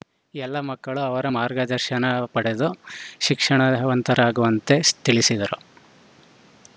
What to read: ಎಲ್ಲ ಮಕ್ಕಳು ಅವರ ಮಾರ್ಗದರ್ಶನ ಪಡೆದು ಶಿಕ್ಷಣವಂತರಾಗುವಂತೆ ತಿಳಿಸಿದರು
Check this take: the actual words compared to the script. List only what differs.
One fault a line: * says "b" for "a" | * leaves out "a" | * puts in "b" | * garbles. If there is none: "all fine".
all fine